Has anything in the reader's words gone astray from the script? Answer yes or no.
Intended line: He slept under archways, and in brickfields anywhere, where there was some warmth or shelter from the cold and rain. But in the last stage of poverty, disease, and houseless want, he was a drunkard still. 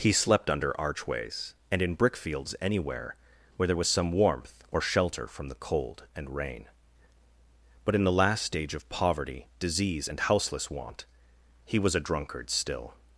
no